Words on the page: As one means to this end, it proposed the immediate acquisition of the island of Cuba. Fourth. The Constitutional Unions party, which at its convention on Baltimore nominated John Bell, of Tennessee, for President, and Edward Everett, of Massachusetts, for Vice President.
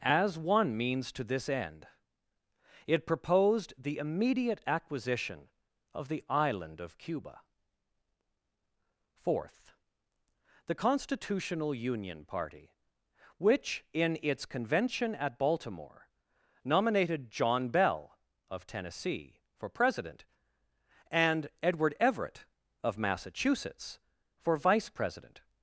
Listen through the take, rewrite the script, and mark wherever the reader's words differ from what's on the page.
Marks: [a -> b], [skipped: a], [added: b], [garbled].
As one means to this end, it proposed the immediate acquisition of the island of Cuba. Fourth. The Constitutional [Unions -> Union] party, which [at -> in] its convention [on -> at] Baltimore nominated John Bell, of Tennessee, for President, and Edward Everett, of Massachusetts, for Vice President.